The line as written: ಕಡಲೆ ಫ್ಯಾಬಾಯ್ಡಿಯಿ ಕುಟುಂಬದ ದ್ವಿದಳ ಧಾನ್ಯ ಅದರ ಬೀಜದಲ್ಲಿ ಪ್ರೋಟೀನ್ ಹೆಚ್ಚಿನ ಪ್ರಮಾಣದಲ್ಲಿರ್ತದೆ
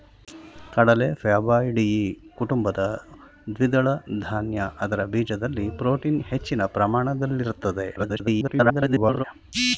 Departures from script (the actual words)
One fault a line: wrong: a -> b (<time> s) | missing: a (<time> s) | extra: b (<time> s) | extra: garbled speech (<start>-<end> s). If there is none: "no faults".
extra: garbled speech (8.0-9.2 s)